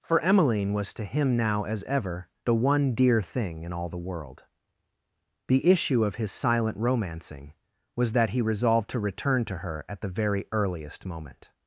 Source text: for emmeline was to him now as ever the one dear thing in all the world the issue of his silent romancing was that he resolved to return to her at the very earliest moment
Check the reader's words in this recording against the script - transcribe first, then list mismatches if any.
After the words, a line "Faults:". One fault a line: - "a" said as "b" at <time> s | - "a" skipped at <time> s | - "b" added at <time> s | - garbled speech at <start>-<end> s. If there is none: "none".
for emmeline was to him now as ever the one dear thing in all the world the issue of his silent romancing was that he resolved to return to her at the very earliest moment
Faults:
none